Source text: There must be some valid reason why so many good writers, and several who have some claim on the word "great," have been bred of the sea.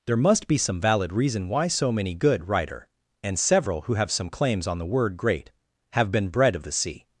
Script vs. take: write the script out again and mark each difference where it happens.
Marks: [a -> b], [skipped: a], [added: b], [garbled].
There must be some valid reason why so many good [writers, -> writer] and several who have some [claim -> claims] on the word "great," have been bred of the sea.